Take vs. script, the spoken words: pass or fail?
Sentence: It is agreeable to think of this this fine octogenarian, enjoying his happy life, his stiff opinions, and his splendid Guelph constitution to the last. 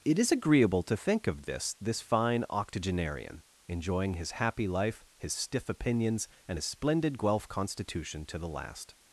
pass